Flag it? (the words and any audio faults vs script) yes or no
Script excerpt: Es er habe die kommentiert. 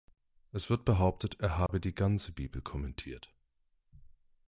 yes